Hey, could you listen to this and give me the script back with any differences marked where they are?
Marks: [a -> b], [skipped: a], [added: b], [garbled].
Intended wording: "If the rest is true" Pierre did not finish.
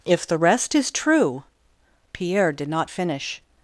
"If the rest is true" Pierre did not finish.